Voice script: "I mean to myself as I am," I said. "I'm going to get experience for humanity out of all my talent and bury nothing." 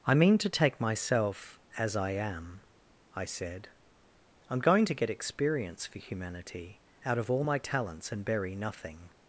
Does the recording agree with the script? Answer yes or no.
no